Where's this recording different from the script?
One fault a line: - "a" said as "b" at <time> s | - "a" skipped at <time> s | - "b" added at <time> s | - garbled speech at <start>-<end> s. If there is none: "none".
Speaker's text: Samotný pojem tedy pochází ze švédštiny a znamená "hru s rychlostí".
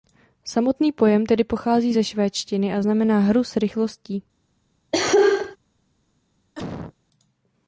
none